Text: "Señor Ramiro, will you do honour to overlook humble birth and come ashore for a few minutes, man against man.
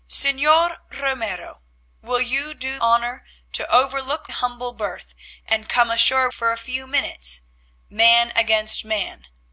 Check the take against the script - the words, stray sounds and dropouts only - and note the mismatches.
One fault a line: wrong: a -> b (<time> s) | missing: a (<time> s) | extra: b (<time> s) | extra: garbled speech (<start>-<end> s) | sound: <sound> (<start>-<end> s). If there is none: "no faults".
no faults